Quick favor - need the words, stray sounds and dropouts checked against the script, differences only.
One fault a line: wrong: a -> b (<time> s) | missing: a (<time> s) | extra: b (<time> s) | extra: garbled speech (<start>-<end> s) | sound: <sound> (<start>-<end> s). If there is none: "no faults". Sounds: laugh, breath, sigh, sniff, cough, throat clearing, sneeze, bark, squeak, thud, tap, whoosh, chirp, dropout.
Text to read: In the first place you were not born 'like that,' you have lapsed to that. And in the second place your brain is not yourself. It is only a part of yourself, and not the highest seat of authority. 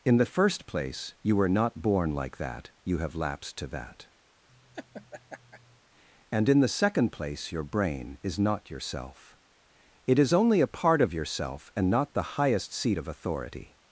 sound: laugh (4.5-5.8 s)